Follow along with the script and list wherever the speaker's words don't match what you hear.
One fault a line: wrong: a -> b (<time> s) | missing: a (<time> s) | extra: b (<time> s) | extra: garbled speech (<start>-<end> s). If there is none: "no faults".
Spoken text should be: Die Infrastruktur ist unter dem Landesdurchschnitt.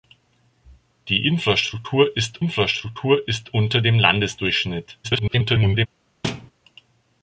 extra: Infrastruktur ist (2.4 s)
extra: garbled speech (5.0-5.9 s)